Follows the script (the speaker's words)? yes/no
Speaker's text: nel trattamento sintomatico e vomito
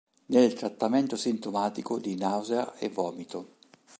no